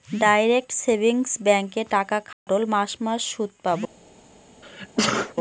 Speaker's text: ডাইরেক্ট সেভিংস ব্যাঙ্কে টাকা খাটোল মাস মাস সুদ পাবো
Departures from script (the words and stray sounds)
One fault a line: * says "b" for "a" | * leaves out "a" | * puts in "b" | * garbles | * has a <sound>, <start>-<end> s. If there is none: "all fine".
* has a dropout, 2.3-2.5 s
* has a sneeze, 4.6-5.3 s